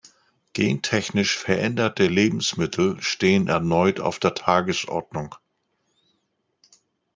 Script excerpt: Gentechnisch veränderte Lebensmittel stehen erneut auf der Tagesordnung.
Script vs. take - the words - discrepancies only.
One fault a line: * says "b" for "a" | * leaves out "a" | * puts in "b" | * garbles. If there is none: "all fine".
all fine